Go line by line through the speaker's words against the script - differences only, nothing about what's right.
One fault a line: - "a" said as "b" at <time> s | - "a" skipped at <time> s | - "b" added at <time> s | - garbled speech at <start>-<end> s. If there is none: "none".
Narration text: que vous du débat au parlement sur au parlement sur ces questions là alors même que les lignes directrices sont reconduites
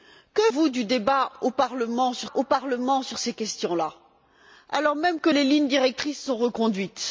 none